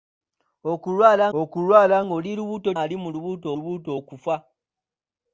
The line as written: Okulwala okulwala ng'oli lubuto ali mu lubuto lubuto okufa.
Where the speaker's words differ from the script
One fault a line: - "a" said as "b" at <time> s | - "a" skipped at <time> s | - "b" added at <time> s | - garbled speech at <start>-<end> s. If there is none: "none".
none